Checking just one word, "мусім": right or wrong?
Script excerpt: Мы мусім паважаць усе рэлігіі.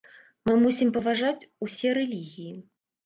right